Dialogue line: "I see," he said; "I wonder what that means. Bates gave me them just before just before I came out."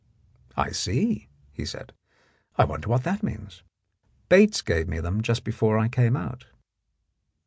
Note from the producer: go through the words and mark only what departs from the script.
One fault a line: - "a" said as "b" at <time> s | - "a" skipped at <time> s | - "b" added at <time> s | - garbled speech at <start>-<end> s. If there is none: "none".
- "just before" skipped at 5.8 s